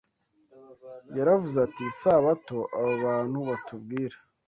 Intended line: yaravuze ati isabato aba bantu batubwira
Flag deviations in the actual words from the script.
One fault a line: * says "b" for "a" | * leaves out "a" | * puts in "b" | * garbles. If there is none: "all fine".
all fine